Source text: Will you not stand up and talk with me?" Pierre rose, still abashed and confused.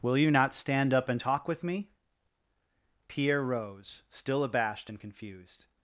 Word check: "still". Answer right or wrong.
right